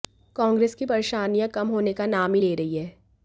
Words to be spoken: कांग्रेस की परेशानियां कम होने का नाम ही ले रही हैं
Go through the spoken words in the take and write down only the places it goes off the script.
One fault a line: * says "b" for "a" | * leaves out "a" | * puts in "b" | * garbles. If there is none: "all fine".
all fine